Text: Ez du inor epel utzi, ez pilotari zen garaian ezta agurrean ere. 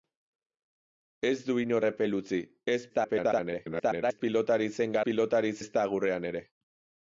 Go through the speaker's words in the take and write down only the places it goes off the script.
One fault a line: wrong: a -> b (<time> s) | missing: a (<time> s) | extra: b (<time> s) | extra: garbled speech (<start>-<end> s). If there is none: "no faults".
extra: garbled speech (2.9-4.2 s)
wrong: garaian -> pilotari (5.1 s)